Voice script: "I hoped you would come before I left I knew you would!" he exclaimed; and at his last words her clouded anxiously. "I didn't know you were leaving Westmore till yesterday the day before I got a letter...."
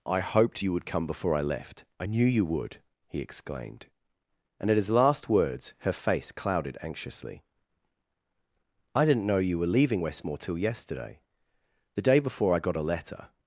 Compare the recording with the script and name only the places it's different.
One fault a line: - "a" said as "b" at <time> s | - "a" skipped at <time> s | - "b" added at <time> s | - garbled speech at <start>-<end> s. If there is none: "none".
- "face" added at 5.9 s